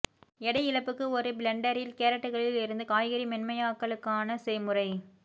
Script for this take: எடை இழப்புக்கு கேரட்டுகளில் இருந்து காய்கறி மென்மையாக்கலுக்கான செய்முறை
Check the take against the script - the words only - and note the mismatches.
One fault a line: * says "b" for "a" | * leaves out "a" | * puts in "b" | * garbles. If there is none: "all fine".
* puts in "ஒரு பிளெண்டரில்"